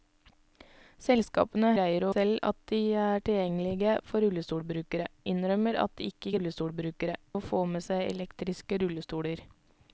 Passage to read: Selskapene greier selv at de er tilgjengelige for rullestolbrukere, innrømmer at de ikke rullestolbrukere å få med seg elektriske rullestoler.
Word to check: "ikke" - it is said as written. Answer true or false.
true